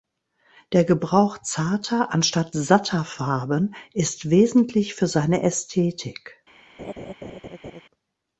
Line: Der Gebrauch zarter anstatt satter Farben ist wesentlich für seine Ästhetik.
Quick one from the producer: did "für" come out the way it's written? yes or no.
yes